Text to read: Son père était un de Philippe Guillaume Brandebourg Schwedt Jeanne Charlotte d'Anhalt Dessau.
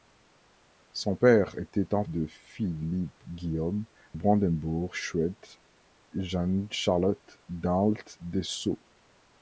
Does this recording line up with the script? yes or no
yes